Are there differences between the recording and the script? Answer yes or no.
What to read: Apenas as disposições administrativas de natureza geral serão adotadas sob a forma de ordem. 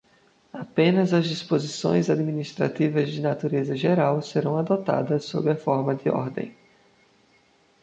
no